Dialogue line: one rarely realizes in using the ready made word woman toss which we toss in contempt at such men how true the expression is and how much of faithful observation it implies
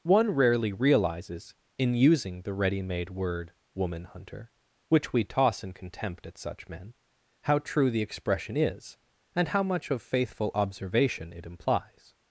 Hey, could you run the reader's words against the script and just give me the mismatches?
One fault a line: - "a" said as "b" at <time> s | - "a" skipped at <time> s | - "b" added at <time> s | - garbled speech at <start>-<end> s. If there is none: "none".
- "toss" said as "hunter" at 4.0 s